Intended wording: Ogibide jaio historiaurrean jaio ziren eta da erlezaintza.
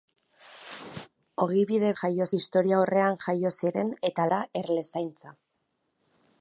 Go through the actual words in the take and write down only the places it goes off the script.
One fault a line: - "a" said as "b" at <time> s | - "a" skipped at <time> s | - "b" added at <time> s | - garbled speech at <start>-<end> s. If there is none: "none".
none